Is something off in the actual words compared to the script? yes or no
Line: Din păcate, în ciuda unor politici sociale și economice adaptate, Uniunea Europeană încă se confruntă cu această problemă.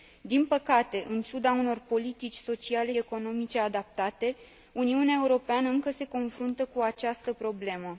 yes